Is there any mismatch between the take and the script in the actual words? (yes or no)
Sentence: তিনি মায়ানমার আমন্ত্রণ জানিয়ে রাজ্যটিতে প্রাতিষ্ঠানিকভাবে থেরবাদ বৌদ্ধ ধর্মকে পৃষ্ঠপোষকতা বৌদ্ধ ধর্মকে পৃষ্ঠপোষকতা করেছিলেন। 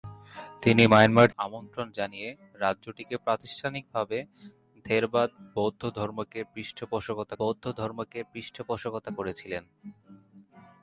no